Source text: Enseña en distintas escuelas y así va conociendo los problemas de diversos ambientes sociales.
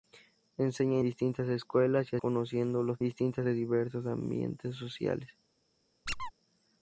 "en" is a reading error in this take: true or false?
true